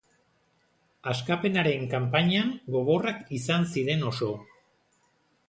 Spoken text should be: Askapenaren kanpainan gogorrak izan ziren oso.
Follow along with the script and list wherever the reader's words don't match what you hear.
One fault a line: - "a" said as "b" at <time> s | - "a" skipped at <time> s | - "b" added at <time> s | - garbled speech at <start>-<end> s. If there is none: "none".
none